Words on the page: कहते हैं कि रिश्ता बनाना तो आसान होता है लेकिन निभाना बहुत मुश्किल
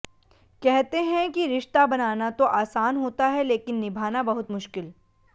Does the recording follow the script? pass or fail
pass